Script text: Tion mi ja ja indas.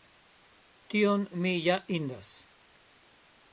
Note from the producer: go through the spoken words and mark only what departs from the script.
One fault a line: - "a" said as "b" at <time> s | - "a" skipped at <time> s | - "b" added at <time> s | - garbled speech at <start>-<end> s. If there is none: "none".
- "ja" skipped at 1.8 s